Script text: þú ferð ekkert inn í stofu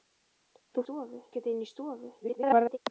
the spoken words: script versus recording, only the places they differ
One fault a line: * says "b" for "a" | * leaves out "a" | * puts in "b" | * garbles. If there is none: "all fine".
* says "stofu" for "ferð"
* garbles